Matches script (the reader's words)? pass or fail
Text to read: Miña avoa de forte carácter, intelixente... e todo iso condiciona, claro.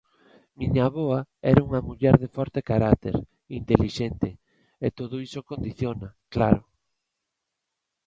fail